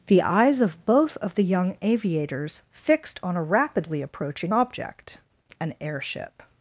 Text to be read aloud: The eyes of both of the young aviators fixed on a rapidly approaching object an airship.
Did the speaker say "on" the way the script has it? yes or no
yes